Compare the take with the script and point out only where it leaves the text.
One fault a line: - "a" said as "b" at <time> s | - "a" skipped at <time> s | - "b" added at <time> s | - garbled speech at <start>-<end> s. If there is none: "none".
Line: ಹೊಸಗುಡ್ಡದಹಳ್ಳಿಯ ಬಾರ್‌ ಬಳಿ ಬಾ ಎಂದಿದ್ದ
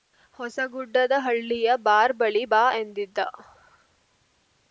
none